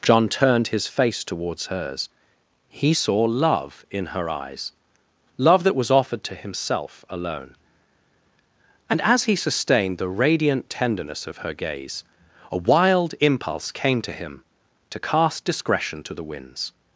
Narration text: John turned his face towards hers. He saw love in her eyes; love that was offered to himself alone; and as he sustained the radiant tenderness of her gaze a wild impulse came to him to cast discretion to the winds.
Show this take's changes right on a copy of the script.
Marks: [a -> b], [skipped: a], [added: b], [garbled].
John turned his face towards hers. He saw love in her eyes; love that was offered to himself alone; and as he sustained the radiant tenderness of her gaze a wild impulse came to him to cast discretion to the winds.